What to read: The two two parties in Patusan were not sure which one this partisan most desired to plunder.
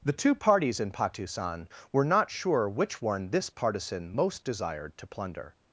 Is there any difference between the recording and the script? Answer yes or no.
yes